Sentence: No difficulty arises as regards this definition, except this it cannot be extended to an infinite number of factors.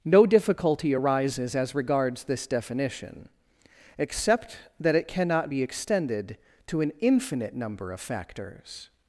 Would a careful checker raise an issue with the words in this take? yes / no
yes